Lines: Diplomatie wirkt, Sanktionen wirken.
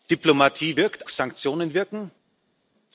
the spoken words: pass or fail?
pass